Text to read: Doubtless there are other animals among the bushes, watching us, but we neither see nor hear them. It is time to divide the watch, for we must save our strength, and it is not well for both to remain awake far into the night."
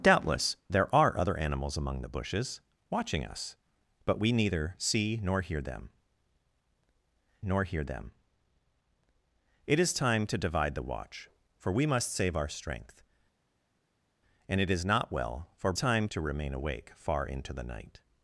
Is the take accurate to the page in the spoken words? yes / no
no